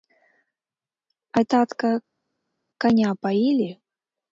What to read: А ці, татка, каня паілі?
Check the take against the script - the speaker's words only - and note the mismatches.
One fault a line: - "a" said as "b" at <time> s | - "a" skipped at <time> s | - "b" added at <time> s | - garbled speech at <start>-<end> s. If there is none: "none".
- "ці" skipped at 1.4 s